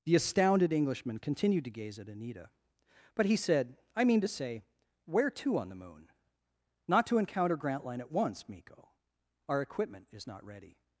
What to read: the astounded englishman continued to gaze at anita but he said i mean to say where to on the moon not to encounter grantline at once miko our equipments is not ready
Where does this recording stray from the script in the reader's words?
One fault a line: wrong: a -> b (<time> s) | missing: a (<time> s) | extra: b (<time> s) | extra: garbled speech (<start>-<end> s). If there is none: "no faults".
wrong: equipments -> equipment (9.6 s)